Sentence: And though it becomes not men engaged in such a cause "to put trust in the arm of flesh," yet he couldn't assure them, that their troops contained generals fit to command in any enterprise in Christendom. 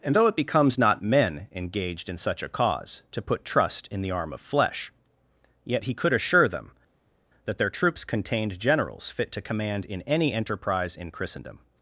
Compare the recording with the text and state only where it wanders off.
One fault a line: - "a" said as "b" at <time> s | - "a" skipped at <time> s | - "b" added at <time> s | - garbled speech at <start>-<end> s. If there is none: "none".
- "couldn't" said as "could" at 5.9 s